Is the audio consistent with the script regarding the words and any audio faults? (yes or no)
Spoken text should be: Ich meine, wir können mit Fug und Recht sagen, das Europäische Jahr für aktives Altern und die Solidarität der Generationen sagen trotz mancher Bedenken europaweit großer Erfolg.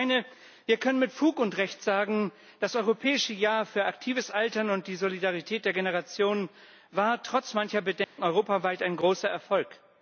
no